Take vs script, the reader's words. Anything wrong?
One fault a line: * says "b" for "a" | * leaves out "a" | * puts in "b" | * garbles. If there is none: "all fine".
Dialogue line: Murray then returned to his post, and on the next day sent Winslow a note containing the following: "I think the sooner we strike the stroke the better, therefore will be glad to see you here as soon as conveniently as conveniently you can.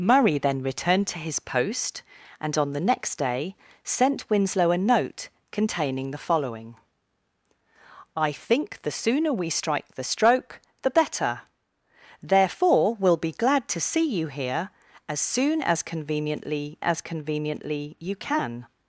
all fine